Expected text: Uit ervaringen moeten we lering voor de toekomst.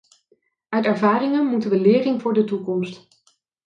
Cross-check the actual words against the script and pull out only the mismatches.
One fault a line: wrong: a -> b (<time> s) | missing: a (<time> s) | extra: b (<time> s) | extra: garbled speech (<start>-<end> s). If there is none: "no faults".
no faults